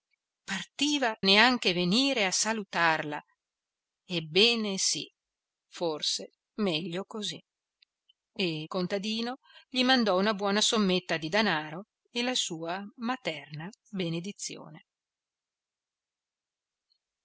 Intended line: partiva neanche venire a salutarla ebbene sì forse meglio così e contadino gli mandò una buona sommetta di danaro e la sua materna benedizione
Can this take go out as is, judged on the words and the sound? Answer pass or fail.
pass